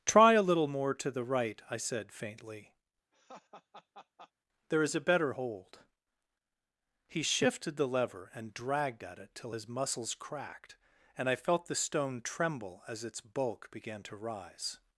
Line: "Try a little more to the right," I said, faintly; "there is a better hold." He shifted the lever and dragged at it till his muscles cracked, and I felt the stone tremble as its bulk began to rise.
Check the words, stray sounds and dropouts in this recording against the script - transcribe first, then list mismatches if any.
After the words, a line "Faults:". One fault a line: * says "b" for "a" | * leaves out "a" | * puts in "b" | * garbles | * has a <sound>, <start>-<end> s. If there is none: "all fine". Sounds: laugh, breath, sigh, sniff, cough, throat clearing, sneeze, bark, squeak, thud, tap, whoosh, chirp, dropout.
"Try a little more to the right," I said, faintly; "there is a better hold." He shifted the lever and dragged at it till his muscles cracked, and I felt the stone tremble as its bulk began to rise.
Faults:
* has a laugh, 3.1-4.3 s